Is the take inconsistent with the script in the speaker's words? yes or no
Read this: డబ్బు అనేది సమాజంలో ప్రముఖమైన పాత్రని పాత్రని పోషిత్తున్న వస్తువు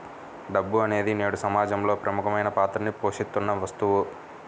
yes